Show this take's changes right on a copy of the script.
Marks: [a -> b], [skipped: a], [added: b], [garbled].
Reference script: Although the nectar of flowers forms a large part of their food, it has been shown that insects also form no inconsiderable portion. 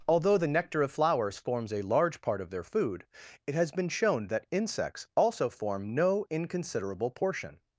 Although the nectar of flowers forms a large part of their food, it has been shown that insects also form no inconsiderable portion.